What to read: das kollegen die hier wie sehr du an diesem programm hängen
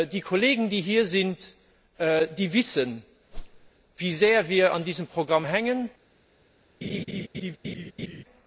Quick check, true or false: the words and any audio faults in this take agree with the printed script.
false